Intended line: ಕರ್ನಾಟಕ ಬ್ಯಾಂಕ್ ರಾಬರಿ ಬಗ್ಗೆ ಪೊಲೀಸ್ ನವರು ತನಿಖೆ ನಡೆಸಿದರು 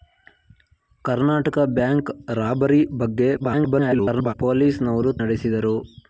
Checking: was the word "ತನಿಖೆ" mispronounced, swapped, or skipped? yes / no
yes